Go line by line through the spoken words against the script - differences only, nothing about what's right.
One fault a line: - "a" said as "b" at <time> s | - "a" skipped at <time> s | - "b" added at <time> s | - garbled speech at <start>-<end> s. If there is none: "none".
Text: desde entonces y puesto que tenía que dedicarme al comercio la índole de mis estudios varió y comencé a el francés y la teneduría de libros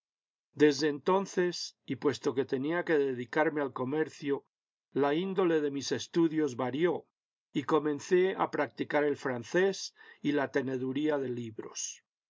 - "practicar" added at 8.5 s